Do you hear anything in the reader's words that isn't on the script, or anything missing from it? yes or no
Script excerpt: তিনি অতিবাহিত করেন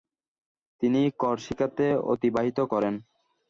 yes